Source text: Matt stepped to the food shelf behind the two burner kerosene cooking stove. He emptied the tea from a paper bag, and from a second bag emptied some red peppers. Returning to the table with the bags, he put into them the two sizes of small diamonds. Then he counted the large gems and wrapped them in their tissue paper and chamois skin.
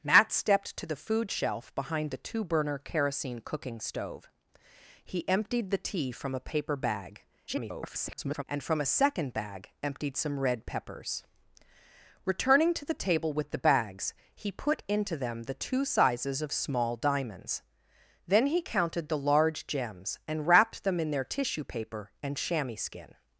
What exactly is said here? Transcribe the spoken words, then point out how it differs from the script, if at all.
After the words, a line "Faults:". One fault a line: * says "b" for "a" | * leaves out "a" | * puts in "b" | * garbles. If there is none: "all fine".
Matt stepped to the food shelf behind the two burner kerosene cooking stove. He emptied the tea from a paper bag, [garbled] and from a second bag emptied some red peppers. Returning to the table with the bags, he put into them the two sizes of small diamonds. Then he counted the large gems and wrapped them in their tissue paper and chamois skin.
Faults:
* garbles